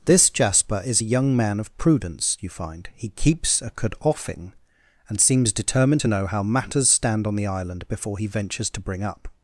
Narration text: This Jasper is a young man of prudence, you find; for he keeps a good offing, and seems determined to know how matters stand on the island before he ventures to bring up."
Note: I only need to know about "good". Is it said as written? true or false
false